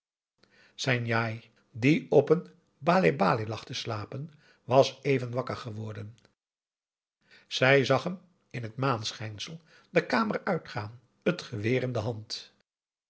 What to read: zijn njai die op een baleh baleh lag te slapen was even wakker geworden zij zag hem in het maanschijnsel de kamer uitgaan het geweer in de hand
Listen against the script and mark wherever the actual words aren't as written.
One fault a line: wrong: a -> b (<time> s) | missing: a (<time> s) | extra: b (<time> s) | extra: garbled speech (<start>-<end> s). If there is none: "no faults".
no faults